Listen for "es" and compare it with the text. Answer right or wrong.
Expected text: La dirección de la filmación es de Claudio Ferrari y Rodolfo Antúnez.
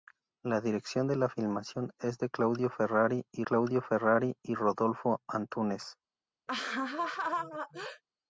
right